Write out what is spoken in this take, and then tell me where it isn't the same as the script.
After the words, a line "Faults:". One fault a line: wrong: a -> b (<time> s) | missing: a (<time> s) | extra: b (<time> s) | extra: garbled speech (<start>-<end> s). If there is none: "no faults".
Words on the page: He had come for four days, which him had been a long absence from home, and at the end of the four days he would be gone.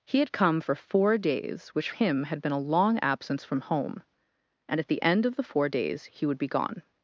He had come for four days, which him had been a long absence from home, and at the end of the four days he would be gone.
Faults:
no faults